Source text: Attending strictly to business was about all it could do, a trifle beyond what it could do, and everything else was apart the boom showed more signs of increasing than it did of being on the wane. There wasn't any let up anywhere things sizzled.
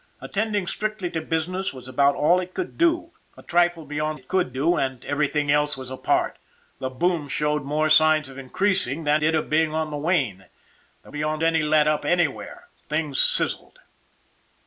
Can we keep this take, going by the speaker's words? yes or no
no